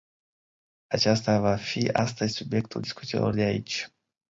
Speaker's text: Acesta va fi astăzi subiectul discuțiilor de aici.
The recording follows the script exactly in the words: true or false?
true